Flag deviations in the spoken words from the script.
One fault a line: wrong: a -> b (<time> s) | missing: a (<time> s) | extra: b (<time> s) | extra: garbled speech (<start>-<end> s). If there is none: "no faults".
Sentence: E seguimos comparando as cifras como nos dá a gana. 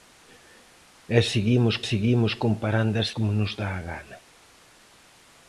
extra: seguimos (1.9 s)
missing: cifras (3.1 s)